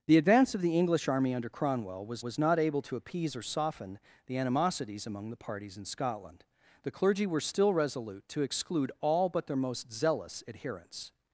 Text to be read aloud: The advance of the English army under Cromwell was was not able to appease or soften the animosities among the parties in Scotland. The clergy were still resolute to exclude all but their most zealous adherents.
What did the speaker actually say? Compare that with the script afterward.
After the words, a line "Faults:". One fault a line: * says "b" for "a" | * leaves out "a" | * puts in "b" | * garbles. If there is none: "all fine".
The advance of the English army under Cromwell was was not able to appease or soften the animosities among the parties in Scotland. The clergy were still resolute to exclude all but their most zealous adherents.
Faults:
all fine